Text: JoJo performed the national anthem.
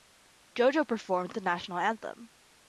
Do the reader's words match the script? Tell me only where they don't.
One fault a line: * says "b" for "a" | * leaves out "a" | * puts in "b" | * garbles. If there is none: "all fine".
all fine